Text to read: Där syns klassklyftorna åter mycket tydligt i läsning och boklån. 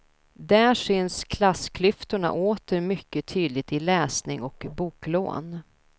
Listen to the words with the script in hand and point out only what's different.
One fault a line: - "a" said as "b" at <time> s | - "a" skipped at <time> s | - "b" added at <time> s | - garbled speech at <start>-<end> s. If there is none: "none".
none